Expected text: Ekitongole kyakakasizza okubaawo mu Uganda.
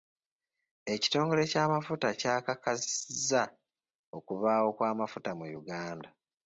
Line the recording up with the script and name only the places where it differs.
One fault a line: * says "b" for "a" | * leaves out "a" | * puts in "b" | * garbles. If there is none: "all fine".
* puts in "ky'amafuta"
* puts in "kw'amafuta"